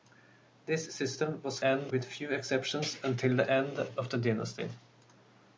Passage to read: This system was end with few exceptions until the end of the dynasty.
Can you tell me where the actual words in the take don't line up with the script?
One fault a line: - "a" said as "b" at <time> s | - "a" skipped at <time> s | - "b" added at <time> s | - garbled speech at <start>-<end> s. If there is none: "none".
none